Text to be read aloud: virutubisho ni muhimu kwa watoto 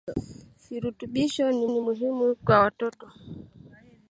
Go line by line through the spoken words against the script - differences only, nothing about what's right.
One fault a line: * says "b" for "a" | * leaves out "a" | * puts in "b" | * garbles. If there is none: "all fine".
* puts in "ni"